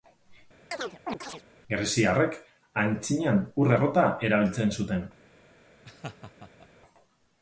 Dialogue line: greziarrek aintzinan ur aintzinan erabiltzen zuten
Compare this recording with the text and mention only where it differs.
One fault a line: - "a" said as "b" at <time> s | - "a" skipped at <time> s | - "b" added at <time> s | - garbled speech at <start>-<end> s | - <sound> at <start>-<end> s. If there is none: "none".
- chirp at 0.7-1.4 s
- "aintzinan" said as "errota" at 3.7 s
- laugh at 5.8-6.7 s